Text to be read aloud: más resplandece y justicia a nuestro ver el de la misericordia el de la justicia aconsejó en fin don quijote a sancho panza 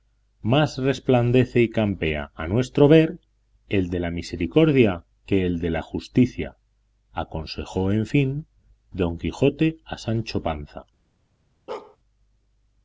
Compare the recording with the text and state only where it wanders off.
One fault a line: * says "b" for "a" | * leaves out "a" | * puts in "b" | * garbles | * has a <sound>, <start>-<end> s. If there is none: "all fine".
* says "campea" for "justicia"
* puts in "que"
* has a bark, 11.7-12.0 s